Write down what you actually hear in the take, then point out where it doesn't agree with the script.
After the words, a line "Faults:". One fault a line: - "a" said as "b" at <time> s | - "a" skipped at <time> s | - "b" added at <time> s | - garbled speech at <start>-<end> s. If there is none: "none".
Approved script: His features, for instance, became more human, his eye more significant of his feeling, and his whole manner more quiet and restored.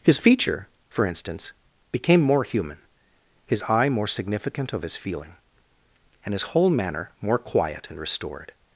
His feature, for instance, became more human, his eye more significant of his feeling, and his whole manner more quiet and restored.
Faults:
- "features" said as "feature" at 0.2 s